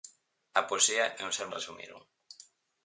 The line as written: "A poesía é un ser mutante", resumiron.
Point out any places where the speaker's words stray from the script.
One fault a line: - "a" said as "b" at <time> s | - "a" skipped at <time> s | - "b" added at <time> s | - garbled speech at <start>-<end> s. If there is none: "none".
- "mutante" skipped at 1.5 s